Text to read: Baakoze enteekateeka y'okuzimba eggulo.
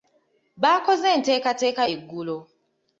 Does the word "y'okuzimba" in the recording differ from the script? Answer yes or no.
yes